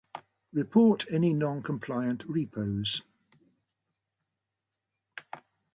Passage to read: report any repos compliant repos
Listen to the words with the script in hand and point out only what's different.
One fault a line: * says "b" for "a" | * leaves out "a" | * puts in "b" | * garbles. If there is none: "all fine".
* says "non" for "repos"